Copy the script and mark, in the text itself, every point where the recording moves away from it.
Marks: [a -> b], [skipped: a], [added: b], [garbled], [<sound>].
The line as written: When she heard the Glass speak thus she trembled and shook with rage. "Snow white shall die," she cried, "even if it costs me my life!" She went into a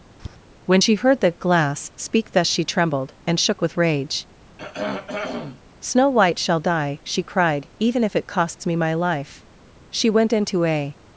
[tap] When she heard the Glass speak thus she trembled and shook with rage. [throat clearing] "Snow white shall die," she cried, "even if it costs me my life!" She went into a